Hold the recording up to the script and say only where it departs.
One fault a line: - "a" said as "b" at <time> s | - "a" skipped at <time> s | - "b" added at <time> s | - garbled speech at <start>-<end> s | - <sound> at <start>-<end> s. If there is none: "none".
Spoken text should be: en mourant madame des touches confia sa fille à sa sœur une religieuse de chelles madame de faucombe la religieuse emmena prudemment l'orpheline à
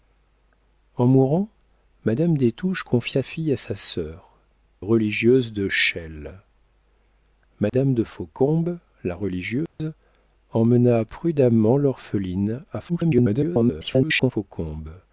- "sa" skipped at 3.2 s
- "une" skipped at 4.3 s
- dropout at 7.7-7.7 s
- dropout at 9.7-9.8 s
- garbled speech at 12.9-14.3 s